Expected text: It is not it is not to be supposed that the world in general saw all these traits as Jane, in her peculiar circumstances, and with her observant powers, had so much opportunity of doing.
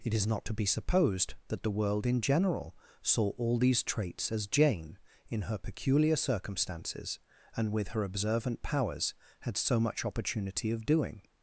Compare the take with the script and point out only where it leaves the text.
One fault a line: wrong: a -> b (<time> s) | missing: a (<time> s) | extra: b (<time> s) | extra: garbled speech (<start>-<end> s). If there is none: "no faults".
missing: it is not (0.5 s)